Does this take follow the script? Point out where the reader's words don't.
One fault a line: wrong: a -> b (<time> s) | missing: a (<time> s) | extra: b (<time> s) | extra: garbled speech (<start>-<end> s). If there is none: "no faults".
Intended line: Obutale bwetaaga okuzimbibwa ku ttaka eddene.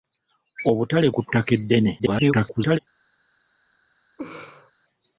missing: bwetaaga okuzimbibwa (1.1 s)
extra: garbled speech (2.0-2.8 s)